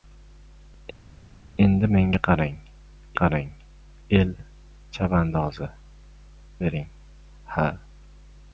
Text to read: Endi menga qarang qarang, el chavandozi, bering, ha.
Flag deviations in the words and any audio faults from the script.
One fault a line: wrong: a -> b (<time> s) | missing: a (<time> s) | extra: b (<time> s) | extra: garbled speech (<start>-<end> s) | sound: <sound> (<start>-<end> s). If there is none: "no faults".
no faults